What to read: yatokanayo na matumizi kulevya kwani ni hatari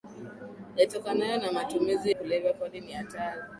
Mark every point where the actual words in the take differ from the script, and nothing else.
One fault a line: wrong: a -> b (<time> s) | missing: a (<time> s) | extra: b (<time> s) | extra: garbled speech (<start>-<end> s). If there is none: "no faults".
no faults